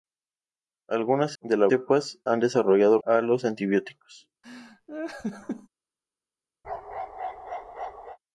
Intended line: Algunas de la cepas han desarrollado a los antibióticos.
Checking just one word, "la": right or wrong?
right